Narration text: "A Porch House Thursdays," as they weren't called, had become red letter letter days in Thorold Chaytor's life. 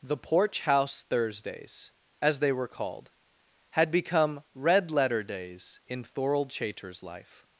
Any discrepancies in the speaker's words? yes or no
yes